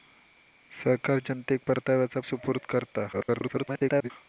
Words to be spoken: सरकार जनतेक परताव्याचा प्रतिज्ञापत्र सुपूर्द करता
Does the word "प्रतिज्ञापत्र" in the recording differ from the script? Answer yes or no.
yes